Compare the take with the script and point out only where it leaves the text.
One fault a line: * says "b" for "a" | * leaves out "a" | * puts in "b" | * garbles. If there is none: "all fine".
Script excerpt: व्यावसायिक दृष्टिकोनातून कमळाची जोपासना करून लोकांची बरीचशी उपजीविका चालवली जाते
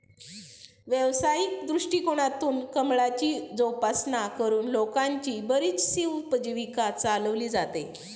all fine